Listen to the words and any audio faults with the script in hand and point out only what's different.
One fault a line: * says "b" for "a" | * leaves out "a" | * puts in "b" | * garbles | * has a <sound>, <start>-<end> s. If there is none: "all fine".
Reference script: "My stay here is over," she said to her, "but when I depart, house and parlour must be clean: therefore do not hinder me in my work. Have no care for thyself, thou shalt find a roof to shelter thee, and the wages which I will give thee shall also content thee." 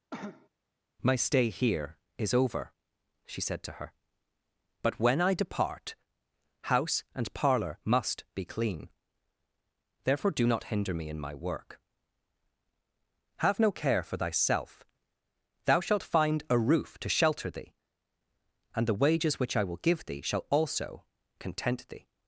* has a cough, 0.1-0.5 s